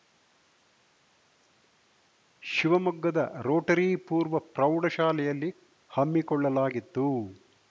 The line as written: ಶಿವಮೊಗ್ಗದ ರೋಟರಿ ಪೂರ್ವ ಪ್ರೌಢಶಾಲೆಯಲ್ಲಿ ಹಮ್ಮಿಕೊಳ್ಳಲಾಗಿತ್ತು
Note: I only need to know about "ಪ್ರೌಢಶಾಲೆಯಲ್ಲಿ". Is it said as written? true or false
true